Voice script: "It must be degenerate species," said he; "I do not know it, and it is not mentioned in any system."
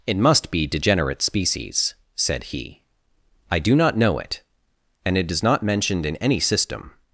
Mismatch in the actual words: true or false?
false